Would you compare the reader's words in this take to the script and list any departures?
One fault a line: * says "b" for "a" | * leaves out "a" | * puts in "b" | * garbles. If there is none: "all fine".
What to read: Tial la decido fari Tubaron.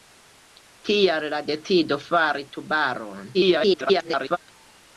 * garbles